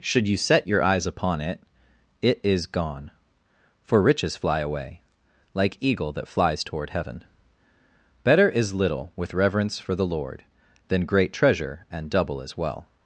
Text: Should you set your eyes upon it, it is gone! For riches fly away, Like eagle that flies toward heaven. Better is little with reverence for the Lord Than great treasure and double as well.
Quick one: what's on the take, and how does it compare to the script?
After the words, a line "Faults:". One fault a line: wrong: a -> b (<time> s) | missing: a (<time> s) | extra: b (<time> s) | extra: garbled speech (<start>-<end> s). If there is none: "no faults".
Should you set your eyes upon it, it is gone! For riches fly away, Like eagle that flies toward heaven. Better is little with reverence for the Lord Than great treasure and double as well.
Faults:
no faults